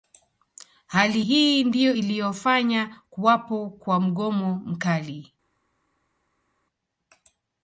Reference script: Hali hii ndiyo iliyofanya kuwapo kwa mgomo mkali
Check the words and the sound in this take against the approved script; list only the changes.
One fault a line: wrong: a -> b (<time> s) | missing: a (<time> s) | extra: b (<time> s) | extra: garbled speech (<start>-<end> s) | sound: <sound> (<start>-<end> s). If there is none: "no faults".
no faults